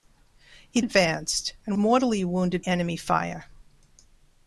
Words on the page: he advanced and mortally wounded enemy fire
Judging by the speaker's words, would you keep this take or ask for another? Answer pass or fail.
pass